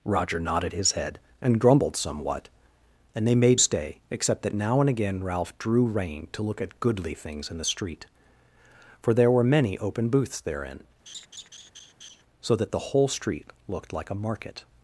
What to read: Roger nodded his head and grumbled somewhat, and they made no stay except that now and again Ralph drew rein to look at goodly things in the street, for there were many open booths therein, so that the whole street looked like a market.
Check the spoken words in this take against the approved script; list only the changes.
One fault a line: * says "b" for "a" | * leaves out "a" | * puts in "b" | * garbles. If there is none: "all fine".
* leaves out "no"